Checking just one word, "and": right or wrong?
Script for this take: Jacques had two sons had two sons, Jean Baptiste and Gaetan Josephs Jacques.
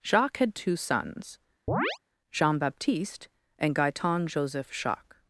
right